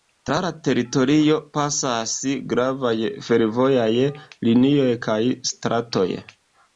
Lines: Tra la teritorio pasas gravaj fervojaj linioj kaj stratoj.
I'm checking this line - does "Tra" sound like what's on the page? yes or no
yes